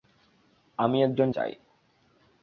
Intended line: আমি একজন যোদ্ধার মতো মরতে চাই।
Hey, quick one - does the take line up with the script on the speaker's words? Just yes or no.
no